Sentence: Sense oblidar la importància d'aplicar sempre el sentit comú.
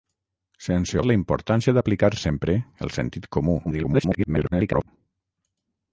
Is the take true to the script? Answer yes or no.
no